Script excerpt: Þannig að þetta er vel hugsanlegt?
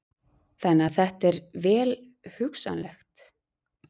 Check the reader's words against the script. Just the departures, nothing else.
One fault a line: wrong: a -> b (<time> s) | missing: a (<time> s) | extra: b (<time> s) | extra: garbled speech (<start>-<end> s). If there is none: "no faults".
no faults